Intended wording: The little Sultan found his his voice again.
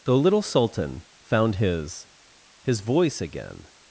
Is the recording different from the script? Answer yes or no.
no